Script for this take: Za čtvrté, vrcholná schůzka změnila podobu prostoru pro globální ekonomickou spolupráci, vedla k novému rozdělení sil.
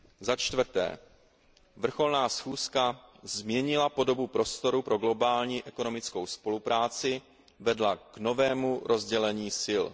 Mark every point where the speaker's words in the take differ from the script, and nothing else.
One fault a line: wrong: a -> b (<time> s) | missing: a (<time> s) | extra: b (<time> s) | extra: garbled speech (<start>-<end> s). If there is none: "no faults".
no faults